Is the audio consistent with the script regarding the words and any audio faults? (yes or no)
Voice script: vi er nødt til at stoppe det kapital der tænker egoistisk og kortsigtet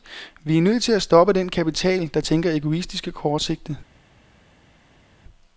no